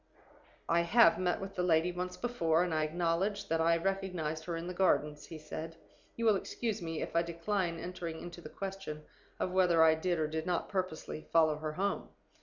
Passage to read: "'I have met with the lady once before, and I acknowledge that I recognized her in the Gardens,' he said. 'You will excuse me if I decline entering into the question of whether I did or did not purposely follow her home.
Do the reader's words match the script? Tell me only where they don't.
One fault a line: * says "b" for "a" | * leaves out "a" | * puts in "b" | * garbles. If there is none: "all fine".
all fine